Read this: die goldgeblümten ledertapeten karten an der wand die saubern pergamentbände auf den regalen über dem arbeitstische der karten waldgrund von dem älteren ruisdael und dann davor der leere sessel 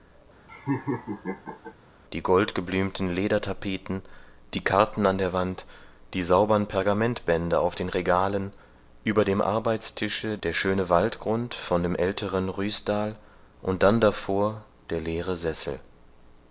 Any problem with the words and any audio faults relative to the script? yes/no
yes